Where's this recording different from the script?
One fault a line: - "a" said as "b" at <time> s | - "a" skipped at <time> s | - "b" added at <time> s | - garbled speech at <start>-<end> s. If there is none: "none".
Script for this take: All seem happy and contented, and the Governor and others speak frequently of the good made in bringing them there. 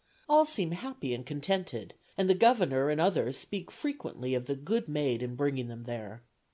none